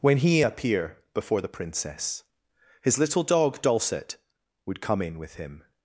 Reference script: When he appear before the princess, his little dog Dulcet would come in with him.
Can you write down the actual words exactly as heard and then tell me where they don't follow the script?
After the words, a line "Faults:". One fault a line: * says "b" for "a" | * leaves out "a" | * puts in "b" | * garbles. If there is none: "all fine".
When he appear before the princess, his little dog Dulcet would come in with him.
Faults:
all fine